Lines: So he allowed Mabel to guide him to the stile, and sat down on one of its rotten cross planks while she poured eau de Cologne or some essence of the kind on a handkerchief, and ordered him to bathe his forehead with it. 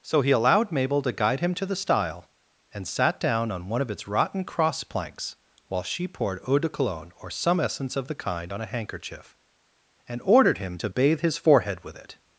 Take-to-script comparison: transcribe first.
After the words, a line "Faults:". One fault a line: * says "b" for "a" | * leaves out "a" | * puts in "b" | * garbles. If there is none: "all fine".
So he allowed Mabel to guide him to the stile, and sat down on one of its rotten cross planks while she poured eau de Cologne or some essence of the kind on a handkerchief, and ordered him to bathe his forehead with it.
Faults:
all fine